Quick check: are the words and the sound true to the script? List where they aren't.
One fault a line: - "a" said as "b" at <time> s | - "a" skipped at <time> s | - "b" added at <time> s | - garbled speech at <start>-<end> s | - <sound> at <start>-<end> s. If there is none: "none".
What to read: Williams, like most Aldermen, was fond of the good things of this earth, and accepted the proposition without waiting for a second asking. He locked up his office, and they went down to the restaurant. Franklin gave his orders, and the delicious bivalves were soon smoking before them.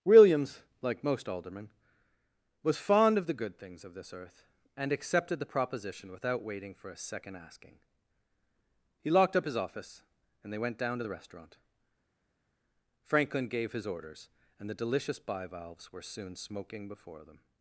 none